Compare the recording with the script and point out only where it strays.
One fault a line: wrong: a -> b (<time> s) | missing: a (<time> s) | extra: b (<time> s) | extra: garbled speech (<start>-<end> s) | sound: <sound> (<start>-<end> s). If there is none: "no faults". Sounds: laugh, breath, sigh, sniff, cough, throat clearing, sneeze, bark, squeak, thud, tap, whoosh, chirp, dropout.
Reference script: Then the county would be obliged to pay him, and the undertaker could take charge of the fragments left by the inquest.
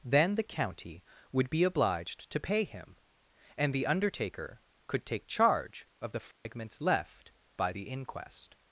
sound: dropout (6.3-6.5 s)